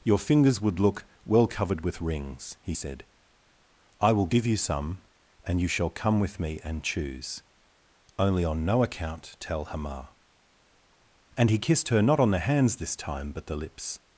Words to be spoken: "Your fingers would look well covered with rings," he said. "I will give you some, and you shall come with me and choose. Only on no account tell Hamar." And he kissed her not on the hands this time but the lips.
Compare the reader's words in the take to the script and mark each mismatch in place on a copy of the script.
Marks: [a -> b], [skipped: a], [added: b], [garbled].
"Your fingers would look well covered with rings," he said. "I will give you some, and you shall come with me and choose. Only on no account tell Hamar." And he kissed her not on the hands this time but the lips.